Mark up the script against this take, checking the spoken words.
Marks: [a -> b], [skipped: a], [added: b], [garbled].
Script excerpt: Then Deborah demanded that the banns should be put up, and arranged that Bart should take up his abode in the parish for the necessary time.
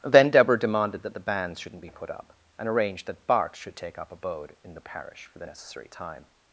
Then Deborah demanded that the banns [should -> shouldn't] be put up, and arranged that Bart should take up [skipped: his] abode in the parish for the necessary time.